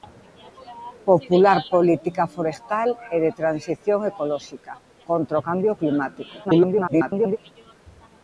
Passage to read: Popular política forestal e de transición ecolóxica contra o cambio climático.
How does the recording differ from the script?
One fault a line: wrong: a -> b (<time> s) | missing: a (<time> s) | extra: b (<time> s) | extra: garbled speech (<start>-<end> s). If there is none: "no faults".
extra: garbled speech (6.4-7.4 s)